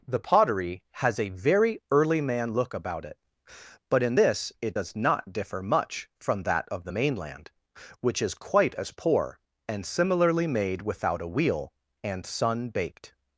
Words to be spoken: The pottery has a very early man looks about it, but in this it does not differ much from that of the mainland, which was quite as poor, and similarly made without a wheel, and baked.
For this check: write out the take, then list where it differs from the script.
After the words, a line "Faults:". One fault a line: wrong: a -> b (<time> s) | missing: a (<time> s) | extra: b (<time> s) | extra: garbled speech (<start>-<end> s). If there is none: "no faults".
The pottery has a very early man look about it, but in this it does not differ much from that of the mainland, which is quite as poor, and similarly made without a wheel, and sun baked.
Faults:
wrong: looks -> look (2.5 s)
wrong: was -> is (8.2 s)
extra: sun (12.3 s)